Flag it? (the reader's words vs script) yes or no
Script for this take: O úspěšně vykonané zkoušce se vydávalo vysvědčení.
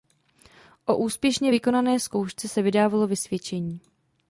no